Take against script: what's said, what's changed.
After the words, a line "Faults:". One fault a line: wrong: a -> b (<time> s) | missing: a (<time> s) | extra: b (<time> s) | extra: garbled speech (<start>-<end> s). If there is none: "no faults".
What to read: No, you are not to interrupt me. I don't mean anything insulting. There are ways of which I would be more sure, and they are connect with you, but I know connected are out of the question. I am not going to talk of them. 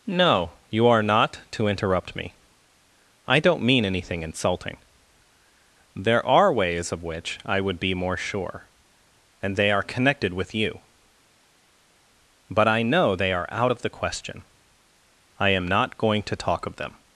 No, you are not to interrupt me. I don't mean anything insulting. There are ways of which I would be more sure, and they are connected with you, but I know they are out of the question. I am not going to talk of them.
Faults:
wrong: connect -> connected (9.8 s)
wrong: connected -> they (13.2 s)